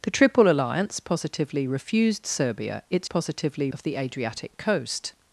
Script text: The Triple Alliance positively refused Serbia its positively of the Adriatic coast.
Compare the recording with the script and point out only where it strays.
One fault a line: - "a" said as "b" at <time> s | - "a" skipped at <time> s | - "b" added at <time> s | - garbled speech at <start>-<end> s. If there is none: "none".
none